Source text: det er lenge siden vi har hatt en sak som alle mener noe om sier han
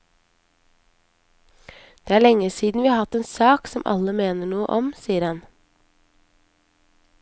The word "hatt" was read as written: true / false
true